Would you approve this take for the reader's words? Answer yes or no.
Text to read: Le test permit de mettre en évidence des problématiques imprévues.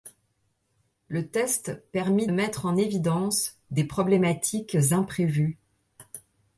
no